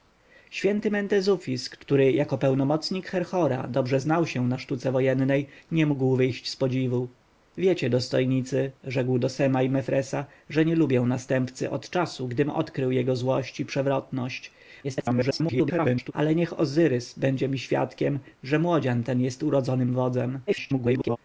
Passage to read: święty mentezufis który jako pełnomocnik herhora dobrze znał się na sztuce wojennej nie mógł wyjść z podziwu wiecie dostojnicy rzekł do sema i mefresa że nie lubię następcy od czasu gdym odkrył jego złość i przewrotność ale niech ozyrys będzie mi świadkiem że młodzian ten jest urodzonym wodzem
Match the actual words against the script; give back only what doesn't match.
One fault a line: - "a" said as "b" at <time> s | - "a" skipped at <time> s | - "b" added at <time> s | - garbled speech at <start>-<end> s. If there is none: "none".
- garbled speech at 14.8-16.1 s
- garbled speech at 20.5-21.2 s